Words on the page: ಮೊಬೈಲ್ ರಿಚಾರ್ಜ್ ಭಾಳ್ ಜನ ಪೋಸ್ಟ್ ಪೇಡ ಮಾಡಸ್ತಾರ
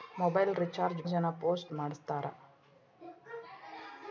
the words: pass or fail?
fail